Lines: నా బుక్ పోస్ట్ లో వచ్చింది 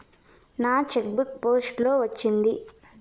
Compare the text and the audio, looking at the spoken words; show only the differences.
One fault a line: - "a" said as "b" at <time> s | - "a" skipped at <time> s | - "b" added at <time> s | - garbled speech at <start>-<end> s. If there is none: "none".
- "చెక్" added at 0.9 s